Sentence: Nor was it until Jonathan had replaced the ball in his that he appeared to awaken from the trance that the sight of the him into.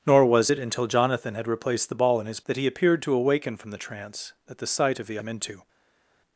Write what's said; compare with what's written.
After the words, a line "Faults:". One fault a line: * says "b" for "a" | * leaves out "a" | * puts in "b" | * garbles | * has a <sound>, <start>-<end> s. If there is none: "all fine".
Nor was it until Jonathan had replaced the ball in his that he appeared to awaken from the trance that the sight of the him into.
Faults:
all fine